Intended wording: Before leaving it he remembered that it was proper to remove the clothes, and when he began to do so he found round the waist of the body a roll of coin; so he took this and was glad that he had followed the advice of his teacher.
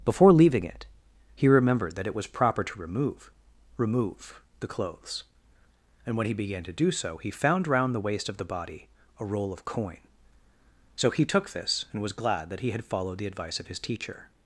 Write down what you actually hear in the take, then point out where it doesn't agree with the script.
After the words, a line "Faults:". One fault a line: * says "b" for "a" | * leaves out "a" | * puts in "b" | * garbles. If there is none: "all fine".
Before leaving it he remembered that it was proper to remove remove the clothes, and when he began to do so he found round the waist of the body a roll of coin; so he took this and was glad that he had followed the advice of his teacher.
Faults:
* puts in "remove"